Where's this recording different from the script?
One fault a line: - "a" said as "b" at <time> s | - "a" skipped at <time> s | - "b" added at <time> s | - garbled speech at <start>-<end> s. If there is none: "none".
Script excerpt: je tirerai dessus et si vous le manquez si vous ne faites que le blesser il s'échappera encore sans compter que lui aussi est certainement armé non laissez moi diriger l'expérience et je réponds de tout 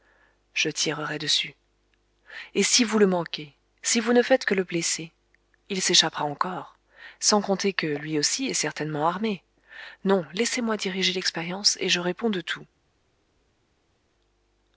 none